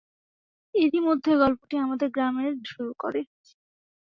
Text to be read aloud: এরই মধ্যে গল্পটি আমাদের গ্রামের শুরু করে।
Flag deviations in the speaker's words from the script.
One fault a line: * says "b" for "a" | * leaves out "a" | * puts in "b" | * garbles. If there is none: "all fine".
all fine